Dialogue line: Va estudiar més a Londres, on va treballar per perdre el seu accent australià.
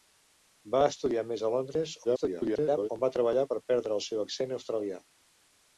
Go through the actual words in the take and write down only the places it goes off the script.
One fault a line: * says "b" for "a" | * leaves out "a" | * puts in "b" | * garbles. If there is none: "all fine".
* garbles